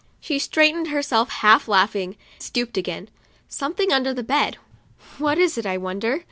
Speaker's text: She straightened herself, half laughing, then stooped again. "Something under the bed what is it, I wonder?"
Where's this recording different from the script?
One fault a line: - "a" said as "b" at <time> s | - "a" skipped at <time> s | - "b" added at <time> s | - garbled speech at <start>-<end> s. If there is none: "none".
- "then" skipped at 2.1 s